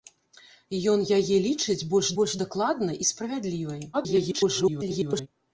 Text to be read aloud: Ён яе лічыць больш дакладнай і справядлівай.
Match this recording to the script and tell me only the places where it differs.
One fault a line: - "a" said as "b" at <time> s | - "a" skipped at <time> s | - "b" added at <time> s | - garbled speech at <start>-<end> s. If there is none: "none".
- "больш" added at 2.2 s
- garbled speech at 3.9-5.3 s